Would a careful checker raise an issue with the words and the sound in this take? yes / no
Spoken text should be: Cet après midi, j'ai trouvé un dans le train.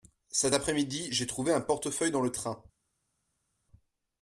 yes